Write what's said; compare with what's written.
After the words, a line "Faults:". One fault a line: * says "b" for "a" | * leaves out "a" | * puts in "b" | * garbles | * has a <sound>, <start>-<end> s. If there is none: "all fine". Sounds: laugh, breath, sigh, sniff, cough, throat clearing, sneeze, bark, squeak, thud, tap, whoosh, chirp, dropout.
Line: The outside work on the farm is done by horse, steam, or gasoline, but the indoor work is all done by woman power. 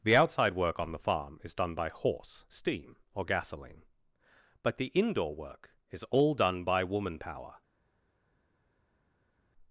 The outside work on the farm is done by horse, steam, or gasoline, but the indoor work is all done by woman power.
Faults:
all fine